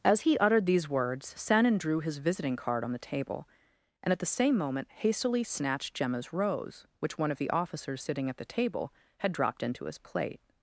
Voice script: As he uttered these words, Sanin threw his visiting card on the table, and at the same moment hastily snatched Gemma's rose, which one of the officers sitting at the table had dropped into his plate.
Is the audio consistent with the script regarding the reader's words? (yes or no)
no